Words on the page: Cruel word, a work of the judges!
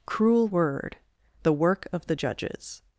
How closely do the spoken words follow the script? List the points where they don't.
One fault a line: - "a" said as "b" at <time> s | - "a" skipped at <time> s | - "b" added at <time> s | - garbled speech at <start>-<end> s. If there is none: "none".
- "a" said as "the" at 1.4 s